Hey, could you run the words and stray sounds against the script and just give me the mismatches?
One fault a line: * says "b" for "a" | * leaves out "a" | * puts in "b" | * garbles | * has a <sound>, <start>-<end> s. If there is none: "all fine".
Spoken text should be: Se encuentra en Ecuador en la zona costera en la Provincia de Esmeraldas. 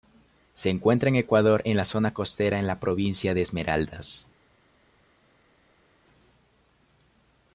all fine